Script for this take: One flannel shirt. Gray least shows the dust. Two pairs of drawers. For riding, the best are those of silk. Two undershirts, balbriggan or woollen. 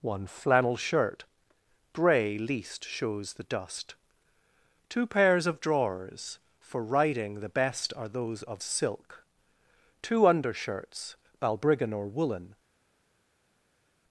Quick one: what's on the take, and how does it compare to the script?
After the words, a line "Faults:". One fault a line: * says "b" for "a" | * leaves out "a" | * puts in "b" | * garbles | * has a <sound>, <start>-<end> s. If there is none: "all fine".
One flannel shirt. Gray least shows the dust. Two pairs of drawers. For riding, the best are those of silk. Two undershirts, balbriggan or woollen.
Faults:
all fine